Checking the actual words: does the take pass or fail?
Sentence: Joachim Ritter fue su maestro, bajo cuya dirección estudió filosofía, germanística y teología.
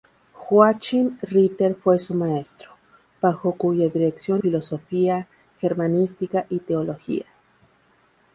fail